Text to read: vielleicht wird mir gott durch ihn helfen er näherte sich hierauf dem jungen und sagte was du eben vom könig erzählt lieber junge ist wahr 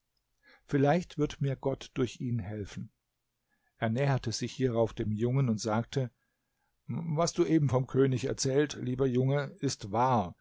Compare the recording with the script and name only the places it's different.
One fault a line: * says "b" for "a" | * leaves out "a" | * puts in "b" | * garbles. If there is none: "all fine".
all fine